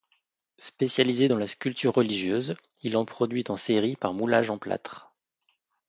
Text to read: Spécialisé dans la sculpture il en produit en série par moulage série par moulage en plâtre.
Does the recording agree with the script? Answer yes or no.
no